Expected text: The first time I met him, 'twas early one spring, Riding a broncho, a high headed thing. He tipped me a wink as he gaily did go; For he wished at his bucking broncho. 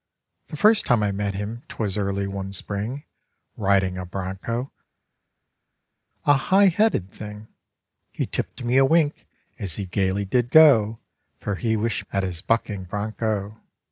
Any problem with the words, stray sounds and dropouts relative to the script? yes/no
no